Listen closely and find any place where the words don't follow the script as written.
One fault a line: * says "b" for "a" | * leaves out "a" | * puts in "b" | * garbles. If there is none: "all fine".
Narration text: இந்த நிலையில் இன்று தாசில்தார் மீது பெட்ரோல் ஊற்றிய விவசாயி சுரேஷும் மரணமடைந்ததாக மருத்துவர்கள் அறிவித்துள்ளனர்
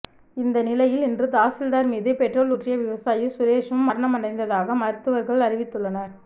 all fine